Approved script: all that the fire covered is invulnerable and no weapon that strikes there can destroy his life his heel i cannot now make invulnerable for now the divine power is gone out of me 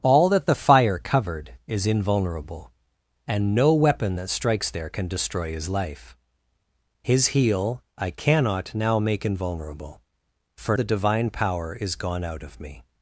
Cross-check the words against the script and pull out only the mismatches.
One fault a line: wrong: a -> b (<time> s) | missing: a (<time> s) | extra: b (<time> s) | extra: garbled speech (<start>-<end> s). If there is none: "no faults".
missing: now (10.8 s)